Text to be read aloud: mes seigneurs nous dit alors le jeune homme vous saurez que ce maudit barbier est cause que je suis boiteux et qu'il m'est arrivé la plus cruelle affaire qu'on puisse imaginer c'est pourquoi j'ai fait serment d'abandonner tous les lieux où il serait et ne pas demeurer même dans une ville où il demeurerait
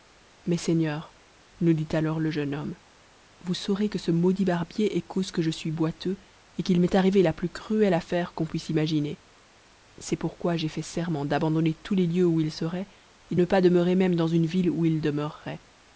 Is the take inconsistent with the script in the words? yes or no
no